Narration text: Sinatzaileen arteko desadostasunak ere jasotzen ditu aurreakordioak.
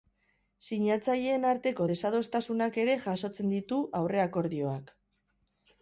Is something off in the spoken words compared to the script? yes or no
no